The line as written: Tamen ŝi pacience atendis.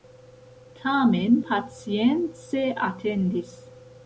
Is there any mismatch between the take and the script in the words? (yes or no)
yes